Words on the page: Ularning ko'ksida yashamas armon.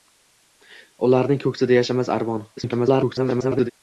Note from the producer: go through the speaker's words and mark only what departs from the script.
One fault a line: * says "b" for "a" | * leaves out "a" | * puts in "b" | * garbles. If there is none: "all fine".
* garbles